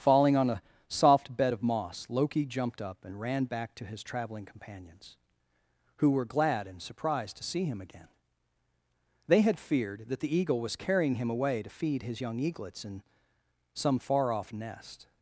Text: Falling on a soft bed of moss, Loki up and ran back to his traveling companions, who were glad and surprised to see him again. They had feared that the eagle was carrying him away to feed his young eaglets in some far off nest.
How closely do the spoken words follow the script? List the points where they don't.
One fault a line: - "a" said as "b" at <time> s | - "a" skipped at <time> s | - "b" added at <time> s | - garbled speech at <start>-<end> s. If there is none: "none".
- "jumped" added at 2.4 s